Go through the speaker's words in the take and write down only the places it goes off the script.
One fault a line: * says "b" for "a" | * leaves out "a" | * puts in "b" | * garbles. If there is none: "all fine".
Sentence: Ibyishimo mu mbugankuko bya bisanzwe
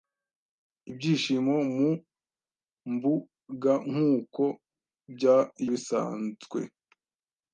all fine